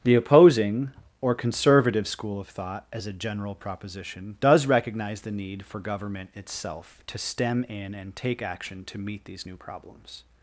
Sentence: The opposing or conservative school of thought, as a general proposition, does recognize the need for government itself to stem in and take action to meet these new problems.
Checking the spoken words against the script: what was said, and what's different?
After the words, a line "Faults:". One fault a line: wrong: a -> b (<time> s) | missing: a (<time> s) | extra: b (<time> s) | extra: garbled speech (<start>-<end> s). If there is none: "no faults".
The opposing or conservative school of thought, as a general proposition, does recognize the need for government itself to stem in and take action to meet these new problems.
Faults:
no faults